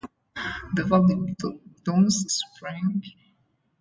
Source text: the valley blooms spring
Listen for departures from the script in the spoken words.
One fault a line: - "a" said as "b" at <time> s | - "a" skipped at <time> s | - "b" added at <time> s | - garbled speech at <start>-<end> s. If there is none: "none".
none